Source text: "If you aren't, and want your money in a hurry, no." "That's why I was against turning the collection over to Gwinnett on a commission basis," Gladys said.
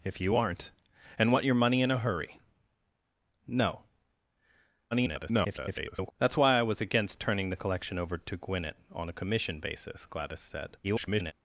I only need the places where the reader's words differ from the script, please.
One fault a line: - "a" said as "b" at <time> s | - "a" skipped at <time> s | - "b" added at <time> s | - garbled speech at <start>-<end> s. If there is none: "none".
- garbled speech at 4.9-6.1 s
- garbled speech at 10.8-11.3 s